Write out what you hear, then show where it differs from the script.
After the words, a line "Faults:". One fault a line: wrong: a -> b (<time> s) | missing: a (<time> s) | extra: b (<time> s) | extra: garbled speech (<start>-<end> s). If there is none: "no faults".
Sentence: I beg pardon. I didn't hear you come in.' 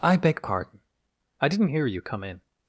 I beg pardon. I didn't hear you come in.'
Faults:
no faults